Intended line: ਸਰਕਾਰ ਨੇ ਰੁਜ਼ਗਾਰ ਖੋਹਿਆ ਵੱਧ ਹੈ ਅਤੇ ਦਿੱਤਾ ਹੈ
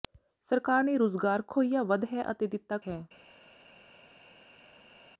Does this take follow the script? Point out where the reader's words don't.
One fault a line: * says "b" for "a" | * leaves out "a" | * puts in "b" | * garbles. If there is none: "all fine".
all fine